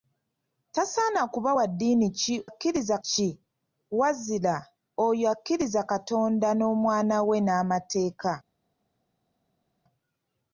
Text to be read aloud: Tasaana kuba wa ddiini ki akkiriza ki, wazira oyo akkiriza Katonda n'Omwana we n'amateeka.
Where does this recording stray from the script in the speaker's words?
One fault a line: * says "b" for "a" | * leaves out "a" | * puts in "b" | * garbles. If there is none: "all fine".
all fine